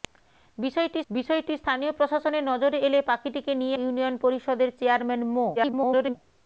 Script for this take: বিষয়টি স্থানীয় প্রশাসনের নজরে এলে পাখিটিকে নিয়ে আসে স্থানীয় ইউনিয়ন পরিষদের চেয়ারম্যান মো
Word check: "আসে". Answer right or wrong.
wrong